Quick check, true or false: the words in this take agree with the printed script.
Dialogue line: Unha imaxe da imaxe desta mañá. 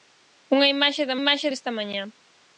true